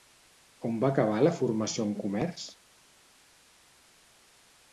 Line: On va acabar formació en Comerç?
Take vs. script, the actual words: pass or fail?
fail